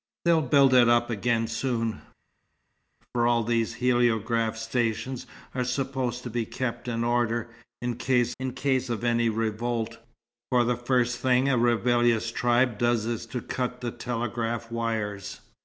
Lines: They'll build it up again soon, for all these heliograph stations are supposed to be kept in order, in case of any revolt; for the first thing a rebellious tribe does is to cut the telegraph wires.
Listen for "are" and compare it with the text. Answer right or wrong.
right